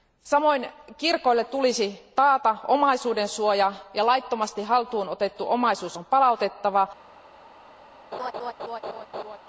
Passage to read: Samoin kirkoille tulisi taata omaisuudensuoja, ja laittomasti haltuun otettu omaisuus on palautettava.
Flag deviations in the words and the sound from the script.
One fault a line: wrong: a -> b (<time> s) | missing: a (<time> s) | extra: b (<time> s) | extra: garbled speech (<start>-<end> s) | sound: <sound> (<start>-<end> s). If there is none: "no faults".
sound: laugh (8.1-9.4 s)